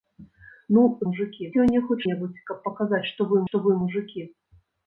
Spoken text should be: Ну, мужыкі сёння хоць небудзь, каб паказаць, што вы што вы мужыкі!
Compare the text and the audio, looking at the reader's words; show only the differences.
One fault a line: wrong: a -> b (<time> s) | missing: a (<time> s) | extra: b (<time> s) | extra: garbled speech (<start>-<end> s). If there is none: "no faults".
no faults